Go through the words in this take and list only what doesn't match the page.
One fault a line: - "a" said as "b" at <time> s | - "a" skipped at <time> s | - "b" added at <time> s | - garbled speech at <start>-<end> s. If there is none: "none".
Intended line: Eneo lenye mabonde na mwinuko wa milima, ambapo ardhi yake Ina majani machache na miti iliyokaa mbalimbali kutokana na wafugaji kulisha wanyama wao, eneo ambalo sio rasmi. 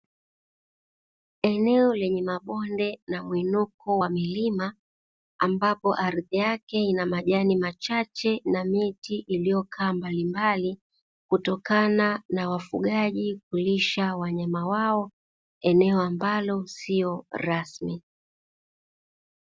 none